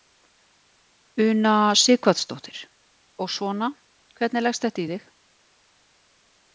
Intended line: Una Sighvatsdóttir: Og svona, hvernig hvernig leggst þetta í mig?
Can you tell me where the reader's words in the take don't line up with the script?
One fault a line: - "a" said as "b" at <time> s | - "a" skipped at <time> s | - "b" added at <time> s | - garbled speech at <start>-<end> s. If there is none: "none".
- "hvernig" skipped at 4.5 s
- "mig" said as "þig" at 5.0 s